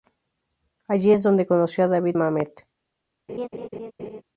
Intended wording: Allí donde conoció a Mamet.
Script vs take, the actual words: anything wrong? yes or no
yes